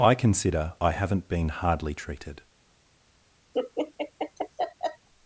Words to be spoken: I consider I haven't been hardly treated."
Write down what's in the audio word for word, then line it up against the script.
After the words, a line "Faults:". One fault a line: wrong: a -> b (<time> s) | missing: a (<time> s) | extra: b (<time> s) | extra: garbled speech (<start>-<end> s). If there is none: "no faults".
I consider I haven't been hardly treated."
Faults:
no faults